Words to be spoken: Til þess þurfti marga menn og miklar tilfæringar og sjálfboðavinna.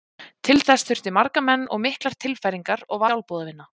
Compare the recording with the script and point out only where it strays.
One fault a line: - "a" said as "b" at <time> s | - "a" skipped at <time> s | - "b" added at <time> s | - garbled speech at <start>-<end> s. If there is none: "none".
none